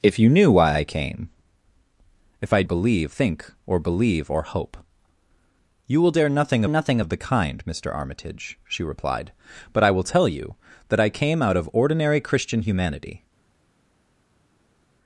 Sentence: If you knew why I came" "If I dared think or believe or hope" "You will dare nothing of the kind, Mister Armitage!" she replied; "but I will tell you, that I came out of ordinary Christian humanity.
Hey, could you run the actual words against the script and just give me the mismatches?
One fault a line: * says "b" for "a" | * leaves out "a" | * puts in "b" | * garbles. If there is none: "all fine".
* says "believe" for "dared"
* puts in "nothing"